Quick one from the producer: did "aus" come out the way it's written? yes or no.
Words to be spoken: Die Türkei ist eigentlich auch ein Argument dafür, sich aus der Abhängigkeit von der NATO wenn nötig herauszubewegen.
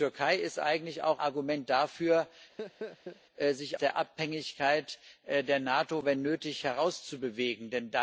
no